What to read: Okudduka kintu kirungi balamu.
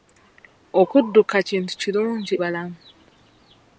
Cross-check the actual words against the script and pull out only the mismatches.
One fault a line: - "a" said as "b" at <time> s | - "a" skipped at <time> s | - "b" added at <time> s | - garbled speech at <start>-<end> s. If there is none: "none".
none